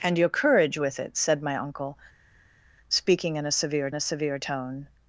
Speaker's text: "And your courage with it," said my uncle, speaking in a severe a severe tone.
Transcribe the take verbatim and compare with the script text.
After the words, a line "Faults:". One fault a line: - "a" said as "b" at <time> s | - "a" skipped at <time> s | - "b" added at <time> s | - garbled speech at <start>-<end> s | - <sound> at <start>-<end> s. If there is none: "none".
"And your courage with it," said my uncle, speaking in a severe a severe tone.
Faults:
none